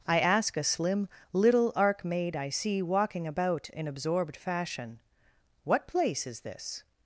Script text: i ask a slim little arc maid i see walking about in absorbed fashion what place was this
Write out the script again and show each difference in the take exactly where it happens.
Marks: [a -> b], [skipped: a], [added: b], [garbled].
i ask a slim little arc maid i see walking about in absorbed fashion what place [was -> is] this